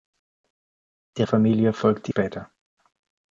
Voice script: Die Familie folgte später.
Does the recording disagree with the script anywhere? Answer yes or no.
no